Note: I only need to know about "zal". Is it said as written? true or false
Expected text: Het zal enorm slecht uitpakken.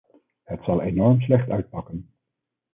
true